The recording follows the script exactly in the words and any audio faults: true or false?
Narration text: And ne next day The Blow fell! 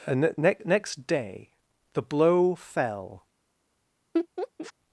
false